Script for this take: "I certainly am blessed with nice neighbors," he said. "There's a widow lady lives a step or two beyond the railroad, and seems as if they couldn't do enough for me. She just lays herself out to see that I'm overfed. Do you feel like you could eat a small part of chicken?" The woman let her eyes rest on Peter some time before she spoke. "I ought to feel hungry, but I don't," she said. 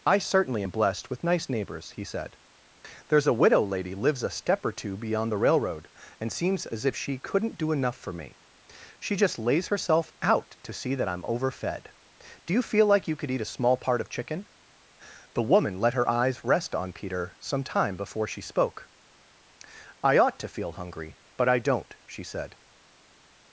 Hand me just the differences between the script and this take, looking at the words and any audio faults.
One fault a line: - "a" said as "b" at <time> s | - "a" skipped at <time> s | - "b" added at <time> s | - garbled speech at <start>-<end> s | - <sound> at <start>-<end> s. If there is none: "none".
- "they" said as "she" at 6.9 s